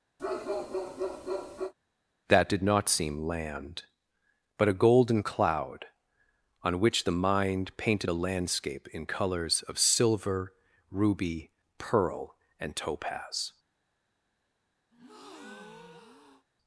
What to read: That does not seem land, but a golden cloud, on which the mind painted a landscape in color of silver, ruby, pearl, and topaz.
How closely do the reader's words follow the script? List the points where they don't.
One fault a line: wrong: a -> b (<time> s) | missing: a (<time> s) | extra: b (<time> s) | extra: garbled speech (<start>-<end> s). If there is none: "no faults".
wrong: does -> did (2.5 s)
wrong: color -> colors (9.1 s)